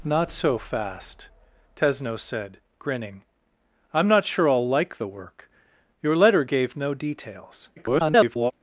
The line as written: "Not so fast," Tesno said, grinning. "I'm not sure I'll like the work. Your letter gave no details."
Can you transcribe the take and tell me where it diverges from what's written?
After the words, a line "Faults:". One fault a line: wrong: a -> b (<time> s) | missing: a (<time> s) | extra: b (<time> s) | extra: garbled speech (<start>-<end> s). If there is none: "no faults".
"Not so fast," Tesno said, grinning. "I'm not sure I'll like the work. Your letter gave no details." [garbled]
Faults:
extra: garbled speech (7.8-8.5 s)